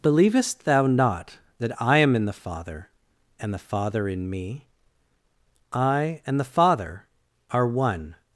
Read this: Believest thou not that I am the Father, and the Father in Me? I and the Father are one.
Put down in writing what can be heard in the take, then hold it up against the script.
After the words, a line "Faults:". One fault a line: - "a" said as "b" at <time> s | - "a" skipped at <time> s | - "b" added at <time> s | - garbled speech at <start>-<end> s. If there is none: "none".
Believest thou not that I am in the Father, and the Father in Me? I and the Father are one.
Faults:
- "in" added at 2.1 s